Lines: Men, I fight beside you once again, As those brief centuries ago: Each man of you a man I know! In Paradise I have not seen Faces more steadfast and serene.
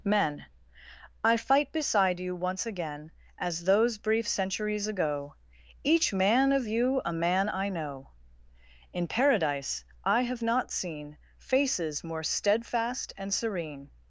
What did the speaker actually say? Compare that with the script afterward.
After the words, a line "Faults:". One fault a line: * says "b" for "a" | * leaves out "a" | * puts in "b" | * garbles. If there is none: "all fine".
Men, I fight beside you once again, As those brief centuries ago: Each man of you a man I know! In Paradise I have not seen Faces more steadfast and serene.
Faults:
all fine